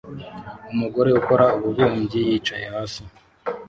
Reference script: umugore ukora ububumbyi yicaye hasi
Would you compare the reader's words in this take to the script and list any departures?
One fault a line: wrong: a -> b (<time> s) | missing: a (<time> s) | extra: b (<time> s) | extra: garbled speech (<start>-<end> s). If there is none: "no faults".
no faults